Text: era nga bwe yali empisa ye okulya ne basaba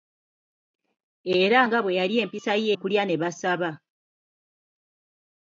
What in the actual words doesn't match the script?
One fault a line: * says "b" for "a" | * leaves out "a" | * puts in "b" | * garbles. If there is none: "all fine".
all fine